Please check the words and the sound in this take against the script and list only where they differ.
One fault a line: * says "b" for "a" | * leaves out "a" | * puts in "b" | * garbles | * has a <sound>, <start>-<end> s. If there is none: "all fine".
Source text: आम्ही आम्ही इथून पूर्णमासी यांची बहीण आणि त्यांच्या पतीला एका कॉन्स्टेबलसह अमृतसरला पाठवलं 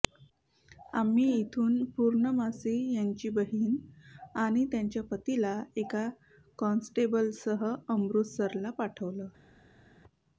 * leaves out "आम्ही"